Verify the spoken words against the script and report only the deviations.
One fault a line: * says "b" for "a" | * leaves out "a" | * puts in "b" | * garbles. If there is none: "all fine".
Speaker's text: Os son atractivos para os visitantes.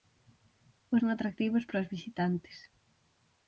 all fine